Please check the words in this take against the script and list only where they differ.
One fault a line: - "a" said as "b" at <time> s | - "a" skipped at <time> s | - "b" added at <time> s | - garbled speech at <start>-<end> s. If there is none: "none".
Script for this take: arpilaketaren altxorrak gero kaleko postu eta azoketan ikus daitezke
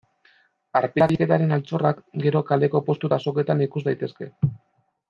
none